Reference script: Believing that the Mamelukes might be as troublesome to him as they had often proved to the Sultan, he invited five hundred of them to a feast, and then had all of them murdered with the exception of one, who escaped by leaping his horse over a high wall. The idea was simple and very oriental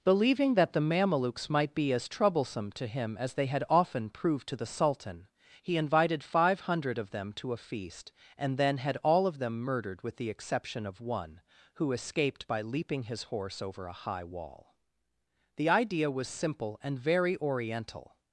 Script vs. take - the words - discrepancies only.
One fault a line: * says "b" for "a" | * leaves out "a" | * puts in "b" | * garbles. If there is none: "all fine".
all fine